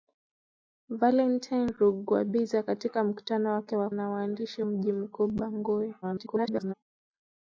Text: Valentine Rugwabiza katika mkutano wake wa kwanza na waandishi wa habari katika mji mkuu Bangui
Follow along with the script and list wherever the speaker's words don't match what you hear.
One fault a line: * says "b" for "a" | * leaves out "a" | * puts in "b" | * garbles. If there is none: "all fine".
* leaves out "kwanza"
* leaves out "wa habari katika"
* garbles